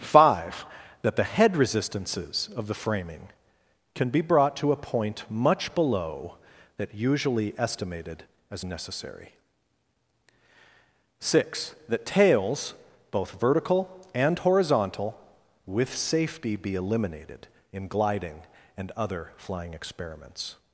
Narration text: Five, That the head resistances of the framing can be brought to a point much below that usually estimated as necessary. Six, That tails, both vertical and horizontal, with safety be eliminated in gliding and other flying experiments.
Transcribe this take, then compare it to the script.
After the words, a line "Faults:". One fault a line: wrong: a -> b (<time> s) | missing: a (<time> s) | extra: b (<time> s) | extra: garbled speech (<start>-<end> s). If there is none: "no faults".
Five, That the head resistances of the framing can be brought to a point much below that usually estimated as necessary. Six, That tails, both vertical and horizontal, with safety be eliminated in gliding and other flying experiments.
Faults:
no faults